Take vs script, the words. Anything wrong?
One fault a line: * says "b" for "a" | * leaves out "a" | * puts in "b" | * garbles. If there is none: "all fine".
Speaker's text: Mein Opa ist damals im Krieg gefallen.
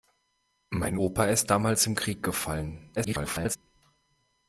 * garbles